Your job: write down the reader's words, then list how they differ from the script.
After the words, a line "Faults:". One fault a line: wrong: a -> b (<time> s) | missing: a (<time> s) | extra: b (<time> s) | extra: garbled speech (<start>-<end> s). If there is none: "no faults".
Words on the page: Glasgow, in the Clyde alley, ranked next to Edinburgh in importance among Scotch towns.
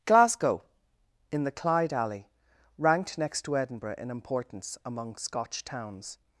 Glasgow, in the Clyde alley, ranked next to Edinburgh in importance among Scotch towns.
Faults:
no faults